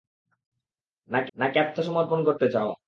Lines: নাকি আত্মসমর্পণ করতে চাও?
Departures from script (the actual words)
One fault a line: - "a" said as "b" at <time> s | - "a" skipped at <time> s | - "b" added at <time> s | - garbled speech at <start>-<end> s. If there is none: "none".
- "নাকি" added at 1.4 s